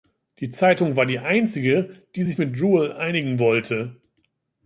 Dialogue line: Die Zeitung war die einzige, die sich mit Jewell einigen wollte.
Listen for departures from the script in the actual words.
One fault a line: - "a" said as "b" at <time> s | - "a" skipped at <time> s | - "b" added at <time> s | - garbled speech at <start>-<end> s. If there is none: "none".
none